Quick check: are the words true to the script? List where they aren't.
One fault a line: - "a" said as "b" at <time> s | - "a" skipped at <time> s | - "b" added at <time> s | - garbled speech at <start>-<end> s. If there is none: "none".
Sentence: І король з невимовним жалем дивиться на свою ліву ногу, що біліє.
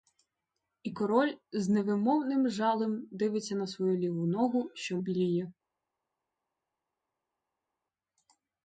none